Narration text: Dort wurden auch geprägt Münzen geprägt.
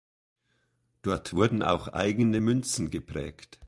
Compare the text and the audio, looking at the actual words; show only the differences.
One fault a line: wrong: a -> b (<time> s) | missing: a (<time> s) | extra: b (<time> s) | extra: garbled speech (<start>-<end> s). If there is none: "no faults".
wrong: geprägt -> eigene (1.9 s)